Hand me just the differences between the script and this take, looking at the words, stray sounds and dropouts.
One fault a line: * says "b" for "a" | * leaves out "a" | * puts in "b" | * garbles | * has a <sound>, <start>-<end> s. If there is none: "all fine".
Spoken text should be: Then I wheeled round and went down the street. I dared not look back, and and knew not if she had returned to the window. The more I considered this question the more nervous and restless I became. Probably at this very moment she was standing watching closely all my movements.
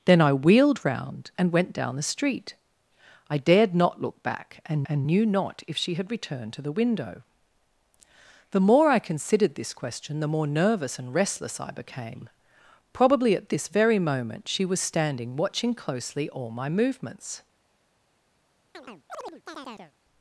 * has a chirp, 18.7-19.9 s